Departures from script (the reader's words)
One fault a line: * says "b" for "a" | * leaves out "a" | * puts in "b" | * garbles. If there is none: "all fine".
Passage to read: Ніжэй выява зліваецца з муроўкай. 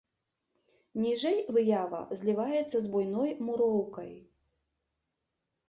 * puts in "буйной"